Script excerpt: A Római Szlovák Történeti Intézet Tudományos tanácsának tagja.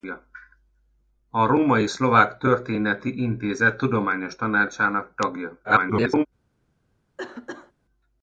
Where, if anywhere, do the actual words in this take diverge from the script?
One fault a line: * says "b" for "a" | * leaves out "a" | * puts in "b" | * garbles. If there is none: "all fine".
* garbles